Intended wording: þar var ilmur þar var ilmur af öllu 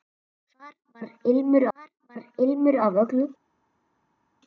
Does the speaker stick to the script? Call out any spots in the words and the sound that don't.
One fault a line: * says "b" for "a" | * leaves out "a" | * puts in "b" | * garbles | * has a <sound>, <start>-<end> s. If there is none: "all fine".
all fine